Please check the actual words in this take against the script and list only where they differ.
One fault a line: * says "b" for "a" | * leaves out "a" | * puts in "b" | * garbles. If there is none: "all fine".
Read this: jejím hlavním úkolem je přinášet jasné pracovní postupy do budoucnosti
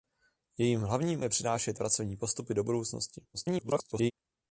* leaves out "úkolem"
* leaves out "jasné"
* garbles